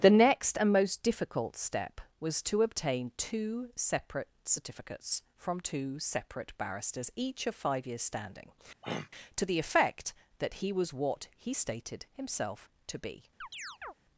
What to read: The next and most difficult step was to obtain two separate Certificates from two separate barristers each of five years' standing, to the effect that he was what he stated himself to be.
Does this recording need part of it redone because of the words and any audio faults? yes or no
yes